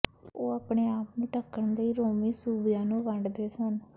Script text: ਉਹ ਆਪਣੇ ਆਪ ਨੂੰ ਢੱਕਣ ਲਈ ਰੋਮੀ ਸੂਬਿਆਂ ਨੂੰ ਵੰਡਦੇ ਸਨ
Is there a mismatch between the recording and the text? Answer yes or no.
no